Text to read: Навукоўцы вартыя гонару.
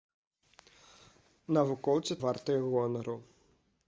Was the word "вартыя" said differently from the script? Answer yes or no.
no